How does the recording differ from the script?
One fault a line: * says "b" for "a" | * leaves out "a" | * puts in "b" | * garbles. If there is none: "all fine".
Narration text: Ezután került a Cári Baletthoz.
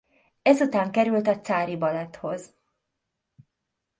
all fine